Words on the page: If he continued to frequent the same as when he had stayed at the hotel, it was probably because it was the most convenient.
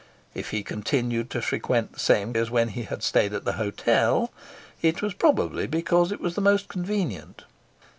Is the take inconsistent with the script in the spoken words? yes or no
no